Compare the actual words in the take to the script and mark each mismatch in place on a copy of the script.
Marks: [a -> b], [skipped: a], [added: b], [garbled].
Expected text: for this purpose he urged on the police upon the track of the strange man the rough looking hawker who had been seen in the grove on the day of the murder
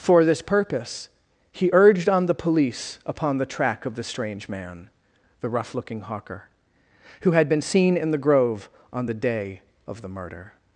for this purpose he urged on the police upon the track of the strange man the rough looking hawker who had been seen in the grove on the day of the murder